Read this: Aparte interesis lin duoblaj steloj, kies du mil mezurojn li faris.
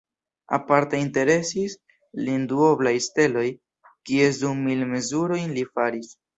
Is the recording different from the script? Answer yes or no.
no